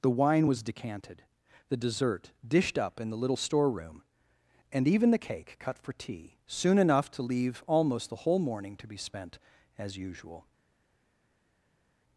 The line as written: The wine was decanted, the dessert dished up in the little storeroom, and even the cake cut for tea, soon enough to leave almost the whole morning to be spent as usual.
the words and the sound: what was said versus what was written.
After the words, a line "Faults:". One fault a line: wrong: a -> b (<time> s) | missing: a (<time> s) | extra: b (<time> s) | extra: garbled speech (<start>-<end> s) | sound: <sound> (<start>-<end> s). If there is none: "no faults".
The wine was decanted, the dessert dished up in the little storeroom, and even the cake cut for tea, soon enough to leave almost the whole morning to be spent as usual.
Faults:
no faults